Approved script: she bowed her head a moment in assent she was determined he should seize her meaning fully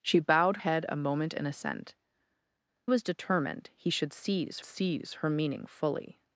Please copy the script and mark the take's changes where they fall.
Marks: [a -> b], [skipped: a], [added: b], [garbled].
she bowed [skipped: her] head a moment in assent [skipped: she] was determined he should seize [added: seize] her meaning fully